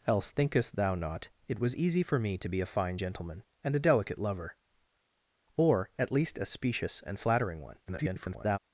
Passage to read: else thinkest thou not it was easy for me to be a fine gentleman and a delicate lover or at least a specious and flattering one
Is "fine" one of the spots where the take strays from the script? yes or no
no